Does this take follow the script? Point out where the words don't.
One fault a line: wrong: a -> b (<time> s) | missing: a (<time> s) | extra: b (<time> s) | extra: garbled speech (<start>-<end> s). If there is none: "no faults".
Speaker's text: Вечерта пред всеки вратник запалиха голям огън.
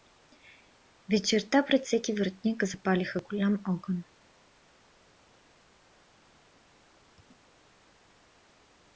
no faults